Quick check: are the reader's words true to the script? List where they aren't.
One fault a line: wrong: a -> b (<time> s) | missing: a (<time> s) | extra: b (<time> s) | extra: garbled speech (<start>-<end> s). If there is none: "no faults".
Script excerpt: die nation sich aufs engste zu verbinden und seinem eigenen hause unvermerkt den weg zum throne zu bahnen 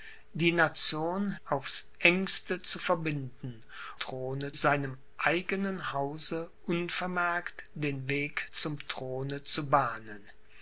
missing: sich (1.4 s)
wrong: und -> throne (4.0 s)